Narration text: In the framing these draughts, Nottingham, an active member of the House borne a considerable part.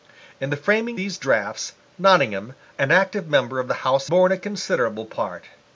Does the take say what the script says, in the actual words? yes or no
yes